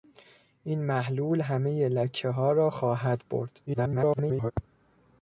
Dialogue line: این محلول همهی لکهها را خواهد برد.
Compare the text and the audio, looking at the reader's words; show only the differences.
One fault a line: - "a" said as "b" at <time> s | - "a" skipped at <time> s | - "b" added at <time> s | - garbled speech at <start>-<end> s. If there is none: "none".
- garbled speech at 3.7-4.5 s